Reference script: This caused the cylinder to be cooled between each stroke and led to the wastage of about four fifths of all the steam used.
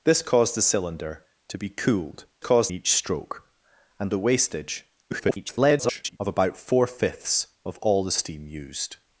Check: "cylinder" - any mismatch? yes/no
no